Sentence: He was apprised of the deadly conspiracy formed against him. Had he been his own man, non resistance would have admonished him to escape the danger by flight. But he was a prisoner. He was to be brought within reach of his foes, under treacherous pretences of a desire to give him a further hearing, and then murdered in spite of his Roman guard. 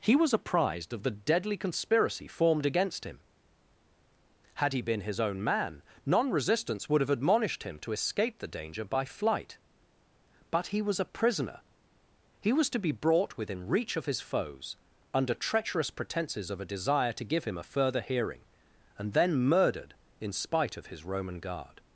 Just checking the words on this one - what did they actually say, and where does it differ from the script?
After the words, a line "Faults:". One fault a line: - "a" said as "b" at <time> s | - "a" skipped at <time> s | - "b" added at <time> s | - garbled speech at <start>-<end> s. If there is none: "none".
He was apprised of the deadly conspiracy formed against him. Had he been his own man, non resistance would have admonished him to escape the danger by flight. But he was a prisoner. He was to be brought within reach of his foes, under treacherous pretences of a desire to give him a further hearing, and then murdered in spite of his Roman guard.
Faults:
none